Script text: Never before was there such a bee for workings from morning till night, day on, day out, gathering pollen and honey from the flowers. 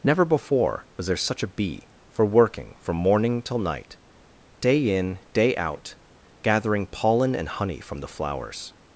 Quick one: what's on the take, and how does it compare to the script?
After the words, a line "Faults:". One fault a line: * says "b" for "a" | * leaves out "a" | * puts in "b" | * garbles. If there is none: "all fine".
Never before was there such a bee for working from morning till night, day in, day out, gathering pollen and honey from the flowers.
Faults:
* says "working" for "workings"
* says "in" for "on"